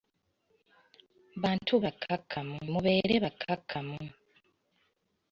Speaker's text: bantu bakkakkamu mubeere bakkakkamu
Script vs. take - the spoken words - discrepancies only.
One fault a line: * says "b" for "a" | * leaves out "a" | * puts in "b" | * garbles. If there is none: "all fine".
all fine